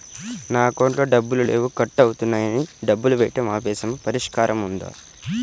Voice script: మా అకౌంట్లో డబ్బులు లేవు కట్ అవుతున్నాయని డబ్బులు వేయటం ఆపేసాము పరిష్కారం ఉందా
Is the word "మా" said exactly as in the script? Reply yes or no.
no